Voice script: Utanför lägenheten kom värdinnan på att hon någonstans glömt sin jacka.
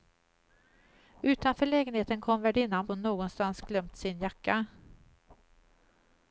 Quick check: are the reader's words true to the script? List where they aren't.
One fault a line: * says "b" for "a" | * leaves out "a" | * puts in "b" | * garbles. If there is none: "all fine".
* leaves out "på att"